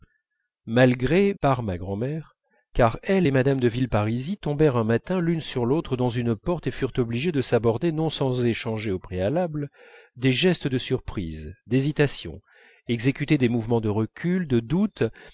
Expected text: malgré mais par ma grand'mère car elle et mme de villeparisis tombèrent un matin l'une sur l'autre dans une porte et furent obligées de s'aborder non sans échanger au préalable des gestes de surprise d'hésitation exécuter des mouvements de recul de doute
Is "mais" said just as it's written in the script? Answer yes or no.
no